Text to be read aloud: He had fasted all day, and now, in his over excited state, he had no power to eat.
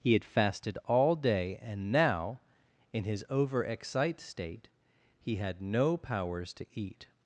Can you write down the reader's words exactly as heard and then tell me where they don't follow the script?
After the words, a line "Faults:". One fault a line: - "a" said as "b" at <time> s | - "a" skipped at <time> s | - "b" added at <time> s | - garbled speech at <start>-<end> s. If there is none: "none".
He had fasted all day, and now, in his over excite state, he had no powers to eat.
Faults:
- "excited" said as "excite" at 3.6 s
- "power" said as "powers" at 6.0 s